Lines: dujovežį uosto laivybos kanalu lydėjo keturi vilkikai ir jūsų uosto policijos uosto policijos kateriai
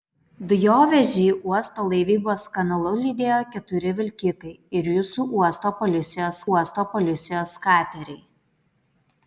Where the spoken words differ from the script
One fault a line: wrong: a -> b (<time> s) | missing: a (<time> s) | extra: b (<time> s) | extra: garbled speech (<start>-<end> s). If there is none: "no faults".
no faults